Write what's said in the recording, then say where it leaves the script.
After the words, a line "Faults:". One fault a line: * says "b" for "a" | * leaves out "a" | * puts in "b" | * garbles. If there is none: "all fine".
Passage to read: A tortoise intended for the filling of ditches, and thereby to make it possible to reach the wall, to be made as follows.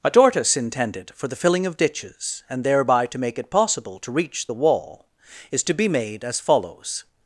A tortoise intended for the filling of ditches, and thereby to make it possible to reach the wall, is to be made as follows.
Faults:
* puts in "is"